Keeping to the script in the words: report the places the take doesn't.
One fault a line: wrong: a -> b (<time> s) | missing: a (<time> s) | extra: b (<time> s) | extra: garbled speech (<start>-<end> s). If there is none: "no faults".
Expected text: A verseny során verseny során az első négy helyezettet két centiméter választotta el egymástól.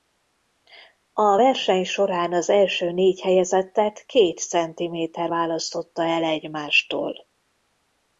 missing: verseny során (2.3 s)